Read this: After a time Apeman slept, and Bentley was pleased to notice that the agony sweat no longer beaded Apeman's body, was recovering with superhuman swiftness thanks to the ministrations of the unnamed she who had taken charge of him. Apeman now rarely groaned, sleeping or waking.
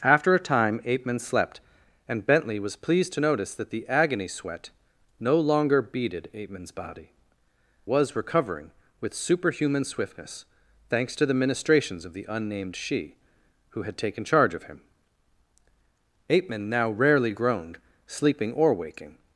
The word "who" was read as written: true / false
true